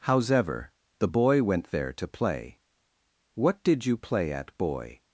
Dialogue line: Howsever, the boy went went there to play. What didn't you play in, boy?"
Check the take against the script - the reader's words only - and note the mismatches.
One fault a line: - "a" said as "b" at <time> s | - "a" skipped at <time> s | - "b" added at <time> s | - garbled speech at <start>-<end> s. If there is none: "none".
- "went" skipped at 1.7 s
- "didn't" said as "did" at 3.6 s
- "in" said as "at" at 4.3 s